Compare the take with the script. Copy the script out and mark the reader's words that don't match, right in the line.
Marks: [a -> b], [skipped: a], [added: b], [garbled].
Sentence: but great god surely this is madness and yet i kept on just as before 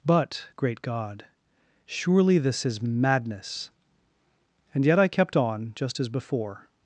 but great god surely this is madness and yet i kept on just as before